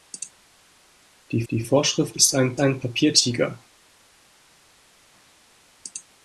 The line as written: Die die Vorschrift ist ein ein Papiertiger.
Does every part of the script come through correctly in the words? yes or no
yes